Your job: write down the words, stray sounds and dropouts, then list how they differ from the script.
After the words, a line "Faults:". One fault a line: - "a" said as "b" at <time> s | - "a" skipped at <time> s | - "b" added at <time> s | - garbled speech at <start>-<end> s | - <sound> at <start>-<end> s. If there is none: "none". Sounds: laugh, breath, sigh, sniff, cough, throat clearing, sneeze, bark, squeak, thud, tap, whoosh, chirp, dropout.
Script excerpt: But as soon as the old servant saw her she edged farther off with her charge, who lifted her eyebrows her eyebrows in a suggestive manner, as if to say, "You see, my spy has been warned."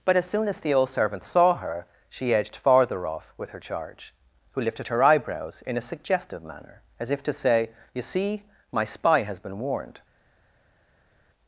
But as soon as the old servant saw her she edged farther off with her charge, who lifted her eyebrows in a suggestive manner, as if to say, "You see, my spy has been warned."
Faults:
- "her eyebrows" skipped at 5.6 s